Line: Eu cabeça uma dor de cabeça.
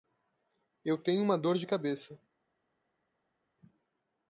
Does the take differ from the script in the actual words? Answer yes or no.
yes